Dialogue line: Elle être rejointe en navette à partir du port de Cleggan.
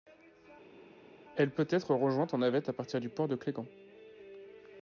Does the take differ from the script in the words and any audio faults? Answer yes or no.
yes